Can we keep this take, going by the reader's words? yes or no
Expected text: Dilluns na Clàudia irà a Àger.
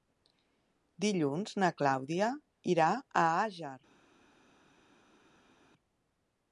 yes